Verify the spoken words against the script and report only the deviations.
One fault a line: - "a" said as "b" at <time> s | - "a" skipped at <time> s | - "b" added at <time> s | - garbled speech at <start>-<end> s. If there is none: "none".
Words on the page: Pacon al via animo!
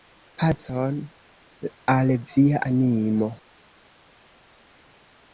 none